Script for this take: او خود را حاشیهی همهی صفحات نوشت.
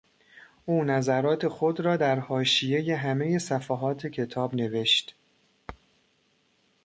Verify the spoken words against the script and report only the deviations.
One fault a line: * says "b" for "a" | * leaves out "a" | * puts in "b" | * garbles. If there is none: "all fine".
* puts in "نظرات"
* puts in "در"
* puts in "کتاب"